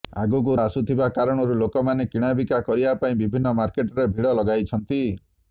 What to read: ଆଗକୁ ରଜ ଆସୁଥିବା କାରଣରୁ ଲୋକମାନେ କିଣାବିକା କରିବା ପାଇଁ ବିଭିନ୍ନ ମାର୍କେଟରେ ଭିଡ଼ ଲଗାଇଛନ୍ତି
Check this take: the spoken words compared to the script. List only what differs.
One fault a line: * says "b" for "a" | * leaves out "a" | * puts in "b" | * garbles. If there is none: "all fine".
* leaves out "ରଜ"